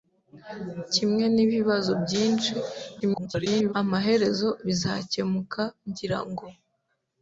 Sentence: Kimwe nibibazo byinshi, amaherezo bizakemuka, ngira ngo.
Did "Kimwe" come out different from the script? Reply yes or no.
no